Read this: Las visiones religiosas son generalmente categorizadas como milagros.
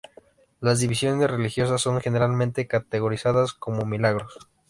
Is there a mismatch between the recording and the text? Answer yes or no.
no